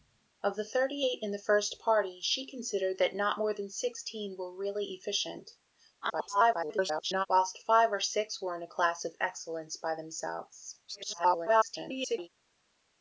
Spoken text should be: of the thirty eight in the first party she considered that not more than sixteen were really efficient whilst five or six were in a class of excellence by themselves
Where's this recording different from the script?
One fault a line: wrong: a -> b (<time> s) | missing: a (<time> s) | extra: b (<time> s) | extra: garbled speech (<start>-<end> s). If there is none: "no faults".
extra: garbled speech (6.0-7.3 s)
extra: garbled speech (10.9-12.3 s)